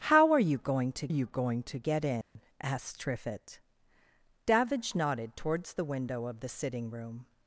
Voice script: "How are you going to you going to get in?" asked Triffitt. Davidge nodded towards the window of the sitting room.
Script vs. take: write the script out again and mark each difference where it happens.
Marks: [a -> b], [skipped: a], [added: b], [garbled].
"How are you going to you going to get in?" asked Triffitt. Davidge nodded towards the window of the sitting room.